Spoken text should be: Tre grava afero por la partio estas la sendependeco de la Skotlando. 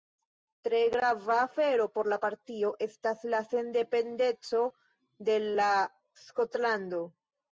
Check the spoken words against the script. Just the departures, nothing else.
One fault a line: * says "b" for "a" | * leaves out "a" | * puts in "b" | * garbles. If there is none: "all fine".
all fine